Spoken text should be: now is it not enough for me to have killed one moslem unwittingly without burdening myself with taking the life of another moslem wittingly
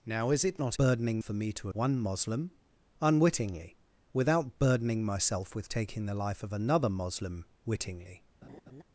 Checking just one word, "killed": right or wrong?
wrong